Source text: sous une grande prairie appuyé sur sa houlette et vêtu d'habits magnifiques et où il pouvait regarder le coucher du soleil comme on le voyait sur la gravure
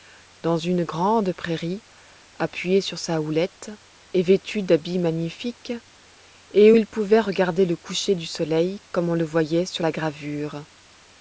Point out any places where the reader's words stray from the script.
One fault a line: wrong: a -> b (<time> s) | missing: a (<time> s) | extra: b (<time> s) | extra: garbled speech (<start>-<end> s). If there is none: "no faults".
wrong: sous -> dans (0.4 s)